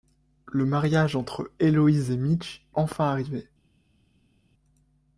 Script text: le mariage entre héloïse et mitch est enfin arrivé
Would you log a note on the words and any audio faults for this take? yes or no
yes